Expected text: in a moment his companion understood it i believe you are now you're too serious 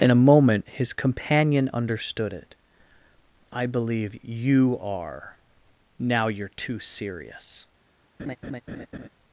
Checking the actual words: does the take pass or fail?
pass